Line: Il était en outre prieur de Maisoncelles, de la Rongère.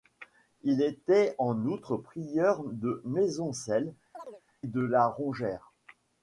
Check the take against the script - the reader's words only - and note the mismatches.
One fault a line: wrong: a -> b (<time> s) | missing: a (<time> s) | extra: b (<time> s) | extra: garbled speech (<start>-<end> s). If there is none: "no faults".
no faults